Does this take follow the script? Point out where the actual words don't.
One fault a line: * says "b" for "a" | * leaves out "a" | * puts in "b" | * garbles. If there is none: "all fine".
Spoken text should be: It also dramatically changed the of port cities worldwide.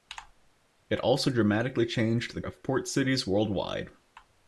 all fine